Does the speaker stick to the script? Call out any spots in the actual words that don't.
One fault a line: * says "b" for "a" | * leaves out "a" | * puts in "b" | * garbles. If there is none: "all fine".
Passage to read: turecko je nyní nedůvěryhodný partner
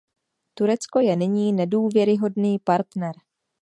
all fine